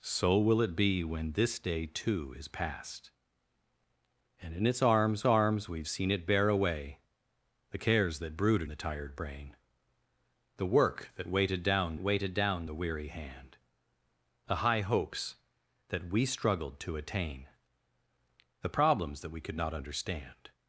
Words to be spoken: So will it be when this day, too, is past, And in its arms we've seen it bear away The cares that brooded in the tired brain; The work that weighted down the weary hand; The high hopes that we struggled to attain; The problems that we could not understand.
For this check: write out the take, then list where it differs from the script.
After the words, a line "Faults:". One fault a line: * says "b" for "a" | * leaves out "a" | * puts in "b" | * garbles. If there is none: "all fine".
So will it be when this day, too, is past, And in its arms arms we've seen it bear away The cares that brooded the tired brain; The work that weighted down weighted down the weary hand; The high hopes that we struggled to attain; The problems that we could not understand.
Faults:
* puts in "arms"
* leaves out "in"
* puts in "weighted down"